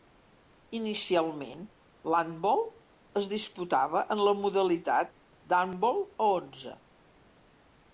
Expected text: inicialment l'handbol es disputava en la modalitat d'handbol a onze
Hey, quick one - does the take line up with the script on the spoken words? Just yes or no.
yes